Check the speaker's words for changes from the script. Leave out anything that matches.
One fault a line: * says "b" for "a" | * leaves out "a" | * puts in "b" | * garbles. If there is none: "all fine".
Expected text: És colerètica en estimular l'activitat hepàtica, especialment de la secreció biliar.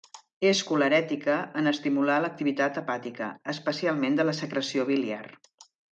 all fine